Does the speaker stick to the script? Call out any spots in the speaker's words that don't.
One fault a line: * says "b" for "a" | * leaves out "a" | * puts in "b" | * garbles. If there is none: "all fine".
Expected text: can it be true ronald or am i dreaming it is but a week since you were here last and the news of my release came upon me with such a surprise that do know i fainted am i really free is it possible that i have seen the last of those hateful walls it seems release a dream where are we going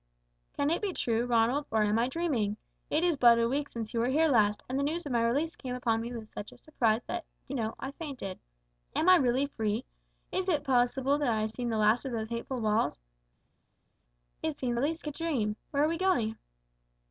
all fine